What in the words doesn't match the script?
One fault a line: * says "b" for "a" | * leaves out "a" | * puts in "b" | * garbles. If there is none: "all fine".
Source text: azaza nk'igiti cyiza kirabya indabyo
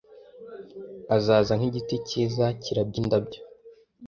all fine